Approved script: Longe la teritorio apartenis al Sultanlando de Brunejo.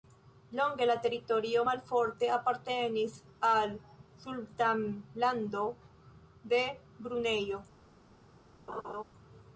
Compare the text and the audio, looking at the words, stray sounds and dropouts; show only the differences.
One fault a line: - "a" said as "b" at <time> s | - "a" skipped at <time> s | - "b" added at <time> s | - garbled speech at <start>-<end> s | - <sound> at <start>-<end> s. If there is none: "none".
- "malforte" added at 1.7 s
- laugh at 8.7-9.0 s